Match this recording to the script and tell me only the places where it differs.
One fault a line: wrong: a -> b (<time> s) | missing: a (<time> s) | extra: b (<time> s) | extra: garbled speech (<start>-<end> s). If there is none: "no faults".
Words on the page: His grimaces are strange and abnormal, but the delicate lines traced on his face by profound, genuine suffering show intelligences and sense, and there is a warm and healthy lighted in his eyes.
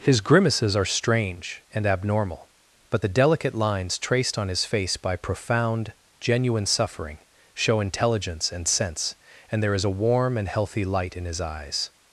wrong: intelligences -> intelligence (7.8 s)
wrong: lighted -> light (10.8 s)